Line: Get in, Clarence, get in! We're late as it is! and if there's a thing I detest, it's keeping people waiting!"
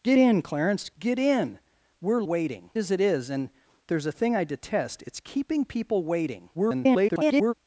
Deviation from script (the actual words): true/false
true